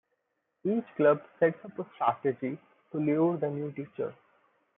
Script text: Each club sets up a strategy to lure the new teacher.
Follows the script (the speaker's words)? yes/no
yes